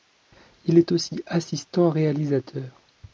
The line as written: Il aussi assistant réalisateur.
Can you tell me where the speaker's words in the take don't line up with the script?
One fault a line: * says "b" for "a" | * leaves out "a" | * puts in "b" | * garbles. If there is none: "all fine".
* puts in "est"